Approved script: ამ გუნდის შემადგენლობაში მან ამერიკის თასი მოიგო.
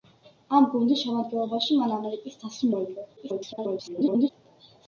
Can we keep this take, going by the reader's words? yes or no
no